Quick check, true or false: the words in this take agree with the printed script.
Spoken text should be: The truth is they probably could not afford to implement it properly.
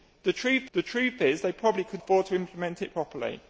false